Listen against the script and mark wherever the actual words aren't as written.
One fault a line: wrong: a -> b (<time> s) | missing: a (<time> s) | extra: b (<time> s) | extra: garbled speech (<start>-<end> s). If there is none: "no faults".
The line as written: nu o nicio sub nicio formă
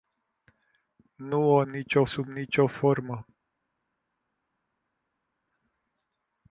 no faults